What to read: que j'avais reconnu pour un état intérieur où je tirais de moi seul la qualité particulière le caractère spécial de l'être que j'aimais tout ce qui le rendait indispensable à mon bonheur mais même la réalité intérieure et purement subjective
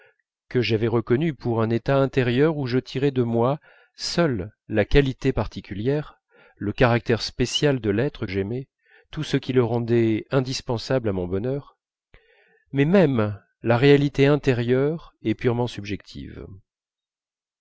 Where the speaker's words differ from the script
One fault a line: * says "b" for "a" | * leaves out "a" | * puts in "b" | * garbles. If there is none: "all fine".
* leaves out "que"